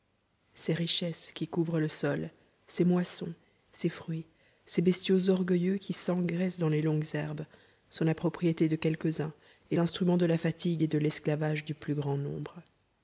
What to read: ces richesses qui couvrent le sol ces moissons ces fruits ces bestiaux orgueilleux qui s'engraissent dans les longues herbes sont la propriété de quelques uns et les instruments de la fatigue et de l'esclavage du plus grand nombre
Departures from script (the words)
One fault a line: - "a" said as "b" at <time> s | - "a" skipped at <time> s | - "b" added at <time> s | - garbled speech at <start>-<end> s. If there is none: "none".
- "les" skipped at 9.8 s